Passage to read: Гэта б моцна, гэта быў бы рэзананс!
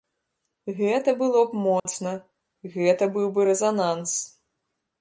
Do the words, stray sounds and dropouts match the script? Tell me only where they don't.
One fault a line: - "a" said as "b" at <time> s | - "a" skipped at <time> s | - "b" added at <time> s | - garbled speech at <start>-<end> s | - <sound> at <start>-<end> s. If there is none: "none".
- "было" added at 1.2 s
- dropout at 1.8-1.9 s